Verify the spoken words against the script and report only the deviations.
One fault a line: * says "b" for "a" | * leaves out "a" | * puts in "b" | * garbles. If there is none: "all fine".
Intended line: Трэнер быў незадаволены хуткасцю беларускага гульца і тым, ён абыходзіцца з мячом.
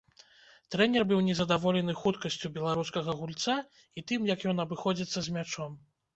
* puts in "як"